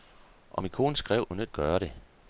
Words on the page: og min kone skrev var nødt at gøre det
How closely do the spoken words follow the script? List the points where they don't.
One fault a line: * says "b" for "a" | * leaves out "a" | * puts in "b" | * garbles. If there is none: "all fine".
all fine